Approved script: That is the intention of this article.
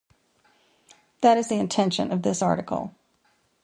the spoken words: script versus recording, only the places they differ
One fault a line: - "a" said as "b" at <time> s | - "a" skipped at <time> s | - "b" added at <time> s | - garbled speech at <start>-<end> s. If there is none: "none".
none